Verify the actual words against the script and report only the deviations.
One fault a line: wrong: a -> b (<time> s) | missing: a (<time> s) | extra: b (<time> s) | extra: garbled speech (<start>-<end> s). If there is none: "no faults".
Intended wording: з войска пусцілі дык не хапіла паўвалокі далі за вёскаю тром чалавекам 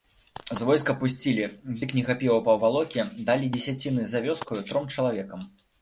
extra: дзесяціны (3.6 s)